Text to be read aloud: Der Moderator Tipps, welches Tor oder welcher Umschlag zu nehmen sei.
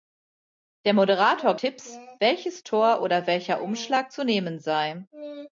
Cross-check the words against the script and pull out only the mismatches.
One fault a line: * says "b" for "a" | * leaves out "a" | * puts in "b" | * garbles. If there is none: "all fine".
all fine